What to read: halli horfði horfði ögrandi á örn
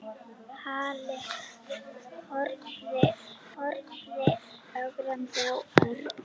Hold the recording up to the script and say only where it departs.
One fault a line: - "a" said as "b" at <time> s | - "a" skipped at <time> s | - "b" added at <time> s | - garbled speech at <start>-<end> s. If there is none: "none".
none